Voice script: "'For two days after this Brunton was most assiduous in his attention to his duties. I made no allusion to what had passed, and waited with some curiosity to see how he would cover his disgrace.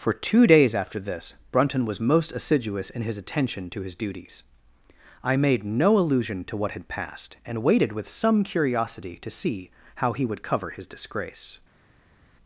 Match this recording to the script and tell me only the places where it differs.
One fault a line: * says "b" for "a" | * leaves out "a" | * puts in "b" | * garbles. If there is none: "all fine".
all fine